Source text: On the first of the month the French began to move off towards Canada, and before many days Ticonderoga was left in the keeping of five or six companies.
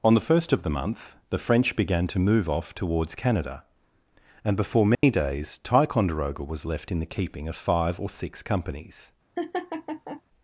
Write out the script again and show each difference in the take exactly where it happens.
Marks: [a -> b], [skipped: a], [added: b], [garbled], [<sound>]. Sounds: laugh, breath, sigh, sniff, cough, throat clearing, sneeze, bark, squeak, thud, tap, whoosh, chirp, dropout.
On the first of the month the French began to move off towards Canada, and before many [dropout] days Ticonderoga was left in the keeping of five or six companies. [laugh]